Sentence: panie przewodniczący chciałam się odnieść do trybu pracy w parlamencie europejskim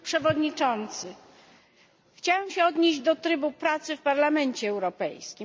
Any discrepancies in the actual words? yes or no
no